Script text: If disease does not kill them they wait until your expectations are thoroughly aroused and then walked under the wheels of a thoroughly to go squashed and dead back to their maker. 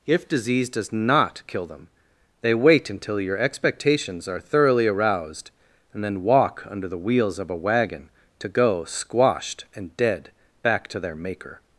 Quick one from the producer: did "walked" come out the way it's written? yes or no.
no